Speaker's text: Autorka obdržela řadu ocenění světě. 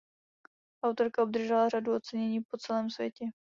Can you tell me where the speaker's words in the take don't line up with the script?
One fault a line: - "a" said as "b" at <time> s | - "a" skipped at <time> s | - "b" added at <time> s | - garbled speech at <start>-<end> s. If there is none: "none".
- "po celém" added at 2.4 s